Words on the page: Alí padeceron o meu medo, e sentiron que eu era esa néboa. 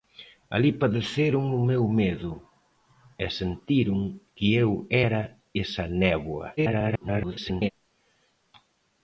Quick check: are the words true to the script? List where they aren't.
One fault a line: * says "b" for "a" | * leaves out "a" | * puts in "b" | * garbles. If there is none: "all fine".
* garbles